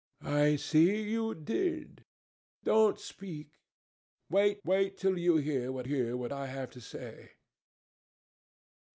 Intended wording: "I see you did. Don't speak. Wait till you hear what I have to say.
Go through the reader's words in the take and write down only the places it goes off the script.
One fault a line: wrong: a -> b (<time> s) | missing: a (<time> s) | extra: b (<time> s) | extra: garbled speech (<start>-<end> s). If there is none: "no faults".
extra: wait (4.7 s)
extra: hear what (5.8 s)